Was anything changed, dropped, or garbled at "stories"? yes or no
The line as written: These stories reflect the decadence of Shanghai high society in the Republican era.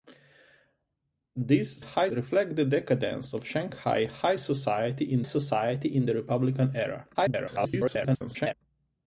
yes